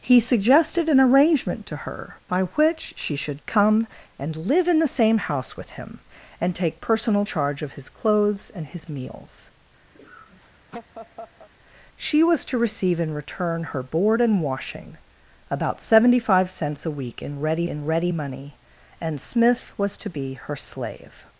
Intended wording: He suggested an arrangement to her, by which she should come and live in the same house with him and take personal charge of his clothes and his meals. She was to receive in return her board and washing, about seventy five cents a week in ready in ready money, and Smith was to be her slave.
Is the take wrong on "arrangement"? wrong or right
right